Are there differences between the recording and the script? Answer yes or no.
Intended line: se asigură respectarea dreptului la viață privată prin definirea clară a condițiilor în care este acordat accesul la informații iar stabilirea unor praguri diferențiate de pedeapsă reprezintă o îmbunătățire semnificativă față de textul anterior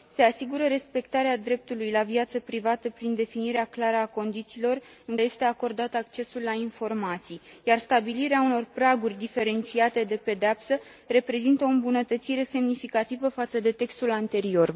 yes